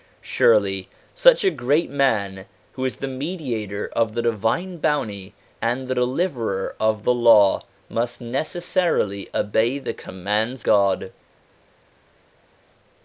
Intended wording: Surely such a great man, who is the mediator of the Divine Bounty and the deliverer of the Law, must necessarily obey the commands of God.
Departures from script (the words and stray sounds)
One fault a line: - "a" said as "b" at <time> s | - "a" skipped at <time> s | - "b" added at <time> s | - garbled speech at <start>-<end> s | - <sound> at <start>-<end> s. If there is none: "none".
- "of" skipped at 10.6 s